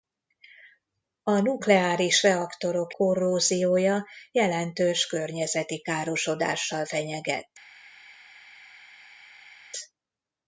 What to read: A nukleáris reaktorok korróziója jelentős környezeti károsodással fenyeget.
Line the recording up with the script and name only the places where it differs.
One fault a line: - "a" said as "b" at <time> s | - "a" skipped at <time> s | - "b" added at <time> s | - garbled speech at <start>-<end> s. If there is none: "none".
none